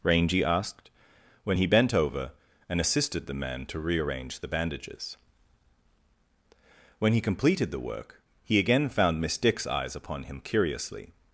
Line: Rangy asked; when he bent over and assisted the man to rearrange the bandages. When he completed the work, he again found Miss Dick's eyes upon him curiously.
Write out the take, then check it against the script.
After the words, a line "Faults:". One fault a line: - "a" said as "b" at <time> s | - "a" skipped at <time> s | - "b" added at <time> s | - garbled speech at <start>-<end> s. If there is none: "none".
Rangy asked; when he bent over and assisted the man to rearrange the bandages. When he completed the work, he again found Miss Dick's eyes upon him curiously.
Faults:
none